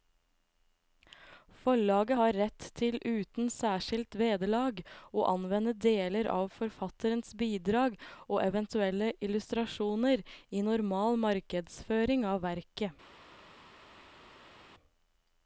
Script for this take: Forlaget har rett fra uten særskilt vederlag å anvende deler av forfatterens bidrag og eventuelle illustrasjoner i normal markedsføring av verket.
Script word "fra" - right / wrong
wrong